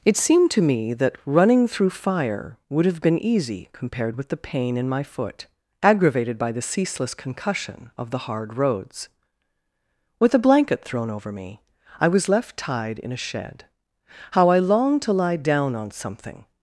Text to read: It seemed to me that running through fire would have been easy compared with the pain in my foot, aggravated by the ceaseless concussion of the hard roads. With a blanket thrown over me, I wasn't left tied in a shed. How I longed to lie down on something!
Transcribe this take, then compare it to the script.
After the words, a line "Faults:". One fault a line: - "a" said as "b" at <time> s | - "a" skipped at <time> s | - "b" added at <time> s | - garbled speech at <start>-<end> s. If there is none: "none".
It seemed to me that running through fire would have been easy compared with the pain in my foot, aggravated by the ceaseless concussion of the hard roads. With a blanket thrown over me, I was left tied in a shed. How I longed to lie down on something!
Faults:
- "wasn't" said as "was" at 12.1 s